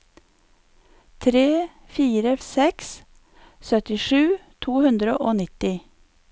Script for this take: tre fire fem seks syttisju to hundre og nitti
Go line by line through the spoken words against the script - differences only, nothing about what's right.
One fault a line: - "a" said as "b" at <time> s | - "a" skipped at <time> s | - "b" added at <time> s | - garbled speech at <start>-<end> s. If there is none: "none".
- "fem" skipped at 2.3 s